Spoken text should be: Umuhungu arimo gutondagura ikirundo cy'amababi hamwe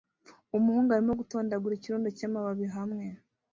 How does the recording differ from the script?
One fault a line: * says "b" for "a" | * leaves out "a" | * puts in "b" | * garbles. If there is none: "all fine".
all fine